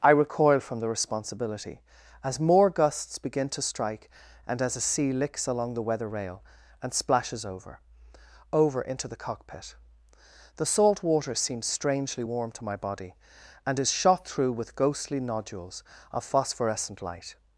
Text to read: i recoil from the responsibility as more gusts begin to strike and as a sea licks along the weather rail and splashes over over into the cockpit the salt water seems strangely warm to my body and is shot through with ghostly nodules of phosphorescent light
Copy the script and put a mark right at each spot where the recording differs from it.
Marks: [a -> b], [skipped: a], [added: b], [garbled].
i recoil from the responsibility as more gusts begin to strike and as a sea licks along the weather rail and splashes over over into the cockpit the salt water seems strangely warm to my body and is shot through with ghostly nodules of phosphorescent light